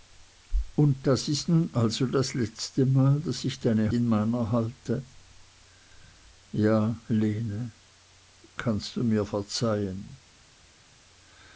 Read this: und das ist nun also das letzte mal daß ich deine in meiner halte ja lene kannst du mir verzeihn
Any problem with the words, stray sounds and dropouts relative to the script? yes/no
no